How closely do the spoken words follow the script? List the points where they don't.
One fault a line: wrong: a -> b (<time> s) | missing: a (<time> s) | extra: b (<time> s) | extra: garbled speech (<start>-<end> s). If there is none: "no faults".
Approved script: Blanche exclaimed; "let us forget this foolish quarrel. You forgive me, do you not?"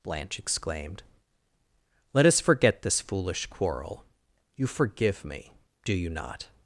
no faults